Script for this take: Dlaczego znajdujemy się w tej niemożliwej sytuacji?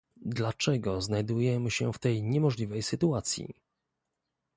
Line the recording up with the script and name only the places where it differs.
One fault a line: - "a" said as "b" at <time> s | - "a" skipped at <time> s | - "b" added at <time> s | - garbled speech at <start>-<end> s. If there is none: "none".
none